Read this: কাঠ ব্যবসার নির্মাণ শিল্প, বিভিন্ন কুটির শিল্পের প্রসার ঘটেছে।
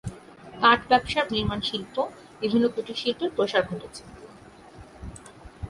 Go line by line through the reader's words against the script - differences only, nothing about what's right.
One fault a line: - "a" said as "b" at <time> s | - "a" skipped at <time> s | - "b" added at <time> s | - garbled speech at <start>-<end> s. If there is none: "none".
none